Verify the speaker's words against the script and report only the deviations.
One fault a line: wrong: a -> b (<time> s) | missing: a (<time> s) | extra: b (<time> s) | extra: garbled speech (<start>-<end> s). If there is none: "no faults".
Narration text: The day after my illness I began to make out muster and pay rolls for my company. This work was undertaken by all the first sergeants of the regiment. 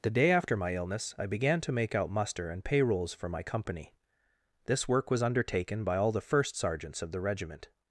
no faults